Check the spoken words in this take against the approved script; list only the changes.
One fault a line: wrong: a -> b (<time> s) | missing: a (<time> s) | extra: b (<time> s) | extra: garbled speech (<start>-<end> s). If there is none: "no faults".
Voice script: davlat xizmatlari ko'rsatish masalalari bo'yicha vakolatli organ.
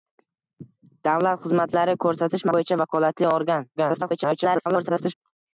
missing: masalalari (2.5 s)
extra: garbled speech (3.8-5.1 s)